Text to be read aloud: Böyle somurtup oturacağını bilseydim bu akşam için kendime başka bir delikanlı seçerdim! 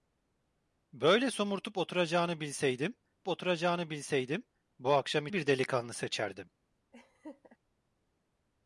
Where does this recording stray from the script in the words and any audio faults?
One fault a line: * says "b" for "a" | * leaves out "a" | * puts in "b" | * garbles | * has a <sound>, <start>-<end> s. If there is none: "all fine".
* puts in "oturacağını bilseydim"
* leaves out "için kendime başka"
* has a laugh, 6.9-7.6 s